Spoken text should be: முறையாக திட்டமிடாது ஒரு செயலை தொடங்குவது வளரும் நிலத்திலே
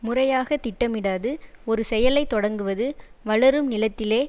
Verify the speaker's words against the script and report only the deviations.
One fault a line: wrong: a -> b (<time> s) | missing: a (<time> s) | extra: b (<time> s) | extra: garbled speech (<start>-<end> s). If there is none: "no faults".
no faults